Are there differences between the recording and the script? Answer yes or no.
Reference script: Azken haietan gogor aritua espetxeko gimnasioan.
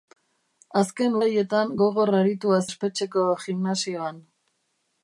no